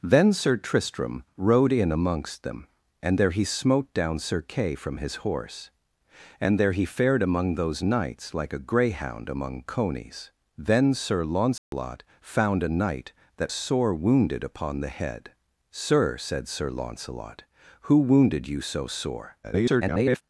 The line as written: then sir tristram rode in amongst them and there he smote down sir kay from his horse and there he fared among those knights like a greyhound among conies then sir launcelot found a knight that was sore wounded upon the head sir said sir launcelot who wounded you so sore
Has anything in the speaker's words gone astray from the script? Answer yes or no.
yes